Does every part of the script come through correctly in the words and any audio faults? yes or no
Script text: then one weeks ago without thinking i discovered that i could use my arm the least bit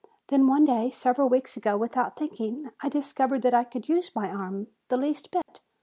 no